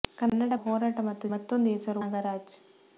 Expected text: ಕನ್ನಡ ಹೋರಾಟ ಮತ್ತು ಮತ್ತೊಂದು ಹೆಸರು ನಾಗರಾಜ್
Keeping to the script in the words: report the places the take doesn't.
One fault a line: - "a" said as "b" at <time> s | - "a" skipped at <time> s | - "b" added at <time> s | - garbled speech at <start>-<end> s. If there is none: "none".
none